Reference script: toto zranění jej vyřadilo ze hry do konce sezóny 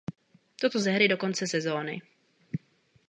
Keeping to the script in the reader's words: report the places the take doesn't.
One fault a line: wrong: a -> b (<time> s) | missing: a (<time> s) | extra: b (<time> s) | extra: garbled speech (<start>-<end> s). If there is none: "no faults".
missing: zranění jej vyřadilo (0.8 s)